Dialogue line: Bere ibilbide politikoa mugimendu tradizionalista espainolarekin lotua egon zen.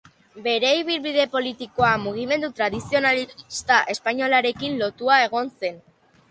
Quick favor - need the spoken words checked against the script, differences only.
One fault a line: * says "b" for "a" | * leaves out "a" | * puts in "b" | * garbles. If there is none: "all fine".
all fine